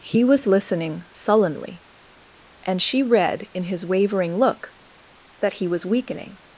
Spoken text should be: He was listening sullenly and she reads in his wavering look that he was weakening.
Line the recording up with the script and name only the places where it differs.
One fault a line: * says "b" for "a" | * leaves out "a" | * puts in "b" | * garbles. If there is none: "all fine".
* says "read" for "reads"